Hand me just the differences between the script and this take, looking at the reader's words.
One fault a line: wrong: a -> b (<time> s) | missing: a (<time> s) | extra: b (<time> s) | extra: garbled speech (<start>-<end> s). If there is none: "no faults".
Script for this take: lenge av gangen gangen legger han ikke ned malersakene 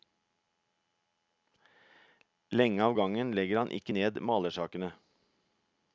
missing: gangen (3.3 s)